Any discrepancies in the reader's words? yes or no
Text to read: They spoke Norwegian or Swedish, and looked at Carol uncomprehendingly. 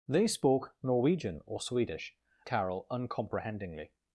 yes